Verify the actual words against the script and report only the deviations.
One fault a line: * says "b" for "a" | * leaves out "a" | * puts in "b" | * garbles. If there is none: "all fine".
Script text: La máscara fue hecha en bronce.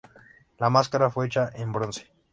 all fine